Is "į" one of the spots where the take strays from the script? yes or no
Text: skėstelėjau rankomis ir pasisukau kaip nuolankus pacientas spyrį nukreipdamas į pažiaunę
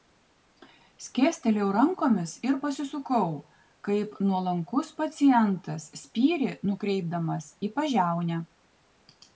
no